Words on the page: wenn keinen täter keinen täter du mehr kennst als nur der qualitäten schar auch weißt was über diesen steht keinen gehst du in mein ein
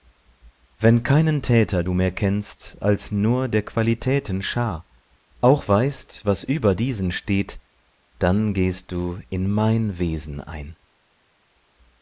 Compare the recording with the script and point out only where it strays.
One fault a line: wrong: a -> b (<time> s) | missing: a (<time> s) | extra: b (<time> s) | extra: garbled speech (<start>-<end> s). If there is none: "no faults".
missing: keinen täter (1.8 s)
wrong: keinen -> dann (8.2 s)
extra: wesen (10.0 s)